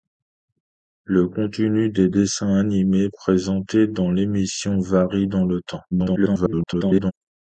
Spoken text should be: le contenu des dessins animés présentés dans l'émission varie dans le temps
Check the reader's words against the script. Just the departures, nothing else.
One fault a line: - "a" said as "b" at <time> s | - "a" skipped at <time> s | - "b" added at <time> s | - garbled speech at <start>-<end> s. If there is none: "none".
- garbled speech at 5.9-7.1 s